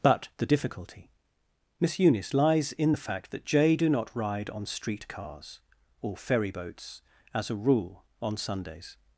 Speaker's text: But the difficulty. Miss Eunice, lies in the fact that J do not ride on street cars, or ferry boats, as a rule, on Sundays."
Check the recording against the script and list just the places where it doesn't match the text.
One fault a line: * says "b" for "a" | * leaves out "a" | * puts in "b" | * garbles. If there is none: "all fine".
all fine